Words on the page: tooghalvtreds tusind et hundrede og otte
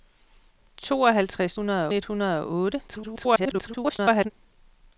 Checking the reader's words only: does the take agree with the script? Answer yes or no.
no